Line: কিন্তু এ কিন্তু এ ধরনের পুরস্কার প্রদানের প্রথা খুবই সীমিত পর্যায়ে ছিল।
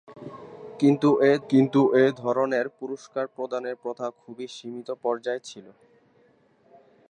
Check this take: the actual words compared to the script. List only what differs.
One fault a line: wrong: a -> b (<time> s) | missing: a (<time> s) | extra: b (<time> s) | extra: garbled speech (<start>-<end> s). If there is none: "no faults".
no faults